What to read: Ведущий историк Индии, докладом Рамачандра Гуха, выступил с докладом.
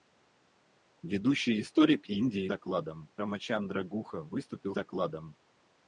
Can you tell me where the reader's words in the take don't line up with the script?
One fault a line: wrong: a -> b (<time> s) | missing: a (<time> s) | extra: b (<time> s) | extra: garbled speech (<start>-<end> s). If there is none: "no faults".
no faults